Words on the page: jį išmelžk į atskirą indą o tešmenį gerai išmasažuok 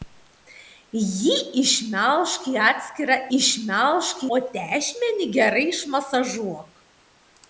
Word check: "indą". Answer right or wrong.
wrong